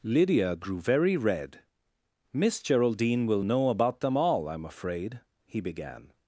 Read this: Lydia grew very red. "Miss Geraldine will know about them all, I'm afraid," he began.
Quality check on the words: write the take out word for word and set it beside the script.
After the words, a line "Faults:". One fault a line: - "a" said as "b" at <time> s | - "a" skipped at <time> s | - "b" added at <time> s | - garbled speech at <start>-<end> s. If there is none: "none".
Lydia grew very red. "Miss Geraldine will know about them all, I'm afraid," he began.
Faults:
none